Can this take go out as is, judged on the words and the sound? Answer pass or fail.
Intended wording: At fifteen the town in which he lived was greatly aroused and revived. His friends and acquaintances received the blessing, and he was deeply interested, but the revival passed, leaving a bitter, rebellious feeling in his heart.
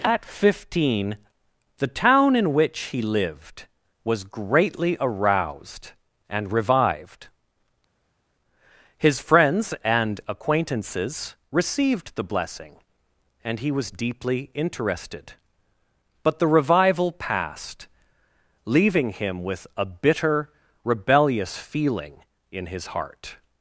fail